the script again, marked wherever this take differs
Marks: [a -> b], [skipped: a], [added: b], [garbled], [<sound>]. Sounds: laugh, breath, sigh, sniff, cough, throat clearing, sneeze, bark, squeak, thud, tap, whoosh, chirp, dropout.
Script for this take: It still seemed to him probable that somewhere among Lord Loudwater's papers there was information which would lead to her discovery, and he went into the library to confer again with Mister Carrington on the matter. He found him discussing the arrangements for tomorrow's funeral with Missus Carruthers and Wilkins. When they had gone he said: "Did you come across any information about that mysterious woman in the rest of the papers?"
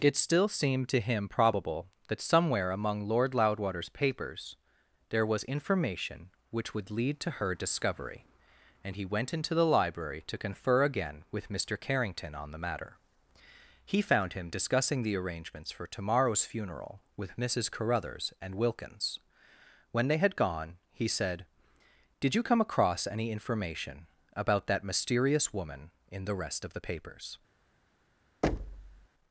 It still seemed to him probable that somewhere among Lord Loudwater's papers there was information which would lead to her discovery, and he went into the library to confer again with Mister Carrington on the matter. He found him discussing the arrangements for tomorrow's funeral with Missus Carruthers and Wilkins. When they had gone he said: "Did you come across any information about that mysterious woman in the rest of the papers?" [thud]